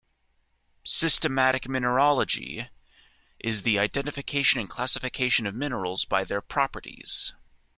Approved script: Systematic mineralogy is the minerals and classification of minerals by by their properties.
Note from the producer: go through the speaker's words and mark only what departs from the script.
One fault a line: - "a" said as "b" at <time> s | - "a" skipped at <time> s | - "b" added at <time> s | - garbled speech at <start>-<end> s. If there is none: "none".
- "minerals" said as "identification" at 3.8 s
- "by" skipped at 6.2 s